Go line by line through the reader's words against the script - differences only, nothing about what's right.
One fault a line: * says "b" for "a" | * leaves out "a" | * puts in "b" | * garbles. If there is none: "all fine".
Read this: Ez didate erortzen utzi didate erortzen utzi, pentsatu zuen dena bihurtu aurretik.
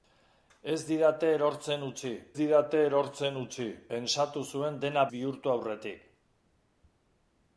all fine